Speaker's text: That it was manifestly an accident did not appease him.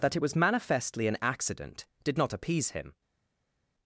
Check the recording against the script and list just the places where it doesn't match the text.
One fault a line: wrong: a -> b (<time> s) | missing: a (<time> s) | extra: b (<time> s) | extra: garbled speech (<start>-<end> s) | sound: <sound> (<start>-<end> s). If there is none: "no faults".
no faults